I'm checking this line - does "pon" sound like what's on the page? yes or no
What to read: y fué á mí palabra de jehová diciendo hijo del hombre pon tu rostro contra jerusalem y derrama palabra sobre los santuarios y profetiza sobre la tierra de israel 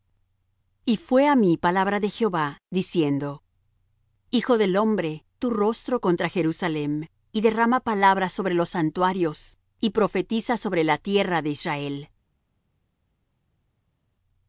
no